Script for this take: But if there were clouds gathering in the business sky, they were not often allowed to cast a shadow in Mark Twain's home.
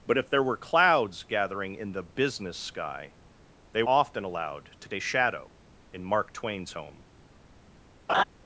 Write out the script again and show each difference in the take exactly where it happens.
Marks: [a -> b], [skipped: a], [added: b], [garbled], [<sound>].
But if there were clouds gathering in the business sky, they [skipped: were not] often allowed to [skipped: cast] a shadow in Mark Twain's home. [laugh]